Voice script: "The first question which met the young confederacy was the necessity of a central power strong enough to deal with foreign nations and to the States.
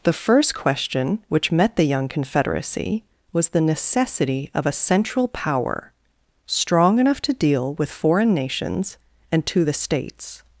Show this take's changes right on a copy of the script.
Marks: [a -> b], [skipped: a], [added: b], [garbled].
"The first question which met the young confederacy was the necessity of a central power strong enough to deal with foreign nations and to the States.